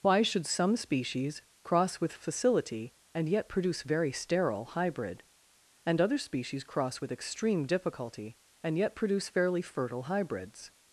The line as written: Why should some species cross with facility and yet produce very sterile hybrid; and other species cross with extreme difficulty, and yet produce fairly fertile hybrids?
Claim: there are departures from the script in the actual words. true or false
false